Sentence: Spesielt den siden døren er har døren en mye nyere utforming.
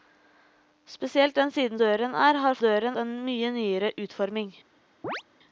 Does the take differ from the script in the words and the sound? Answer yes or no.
yes